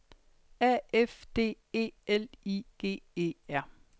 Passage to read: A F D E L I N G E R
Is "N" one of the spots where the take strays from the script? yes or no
yes